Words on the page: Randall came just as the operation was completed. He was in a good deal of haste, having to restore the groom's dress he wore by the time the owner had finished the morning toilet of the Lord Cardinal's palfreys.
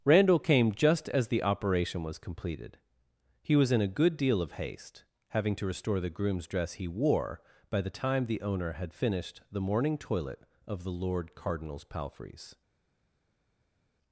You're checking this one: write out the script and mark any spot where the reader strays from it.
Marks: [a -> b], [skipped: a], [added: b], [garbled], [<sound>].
Randall came just as the operation was completed. He was in a good deal of haste, having to restore the groom's dress he wore by the time the owner had finished the morning toilet of the Lord Cardinal's palfreys.